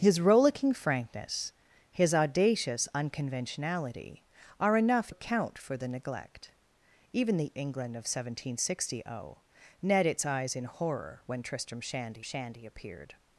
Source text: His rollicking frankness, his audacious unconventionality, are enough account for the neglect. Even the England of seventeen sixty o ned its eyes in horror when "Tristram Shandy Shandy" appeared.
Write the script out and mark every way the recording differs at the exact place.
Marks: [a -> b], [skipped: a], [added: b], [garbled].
His rollicking frankness, his audacious unconventionality, are enough account for the neglect. Even the England of seventeen sixty o ned its eyes in horror when "Tristram Shandy Shandy" appeared.